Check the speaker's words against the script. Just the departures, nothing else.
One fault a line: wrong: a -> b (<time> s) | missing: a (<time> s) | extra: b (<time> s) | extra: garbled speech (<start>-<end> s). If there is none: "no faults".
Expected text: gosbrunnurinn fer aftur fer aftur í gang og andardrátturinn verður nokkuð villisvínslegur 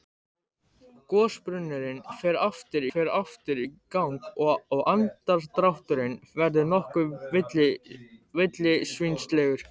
no faults